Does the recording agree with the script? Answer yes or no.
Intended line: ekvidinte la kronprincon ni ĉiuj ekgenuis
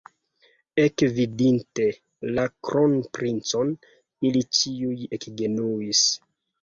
no